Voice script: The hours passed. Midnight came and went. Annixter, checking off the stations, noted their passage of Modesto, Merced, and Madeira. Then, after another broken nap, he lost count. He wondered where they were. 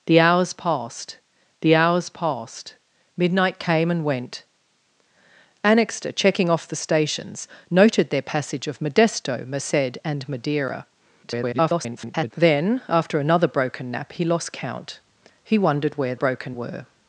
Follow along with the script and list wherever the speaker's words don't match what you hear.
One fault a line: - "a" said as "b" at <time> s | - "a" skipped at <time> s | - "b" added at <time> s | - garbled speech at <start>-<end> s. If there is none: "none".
- "the hours passed" added at 1.6 s
- garbled speech at 11.2-12.3 s
- "they" said as "broken" at 16.1 s